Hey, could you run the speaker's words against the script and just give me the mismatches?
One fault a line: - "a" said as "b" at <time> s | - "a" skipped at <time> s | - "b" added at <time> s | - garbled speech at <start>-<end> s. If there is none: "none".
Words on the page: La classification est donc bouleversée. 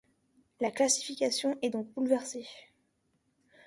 none